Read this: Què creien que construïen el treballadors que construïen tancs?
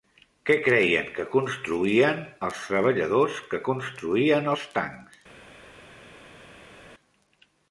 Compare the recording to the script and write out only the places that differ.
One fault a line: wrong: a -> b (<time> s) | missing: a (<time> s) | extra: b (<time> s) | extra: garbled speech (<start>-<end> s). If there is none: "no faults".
wrong: el -> els (2.5 s)
extra: els (4.5 s)